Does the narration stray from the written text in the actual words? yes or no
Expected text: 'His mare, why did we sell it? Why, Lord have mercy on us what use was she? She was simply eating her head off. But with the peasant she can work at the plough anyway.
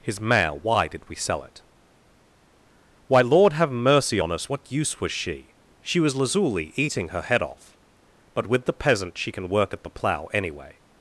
yes